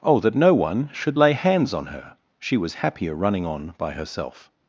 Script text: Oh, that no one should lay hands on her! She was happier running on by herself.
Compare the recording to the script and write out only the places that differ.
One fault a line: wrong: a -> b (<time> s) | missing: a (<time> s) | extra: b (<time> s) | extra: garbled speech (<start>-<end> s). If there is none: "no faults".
no faults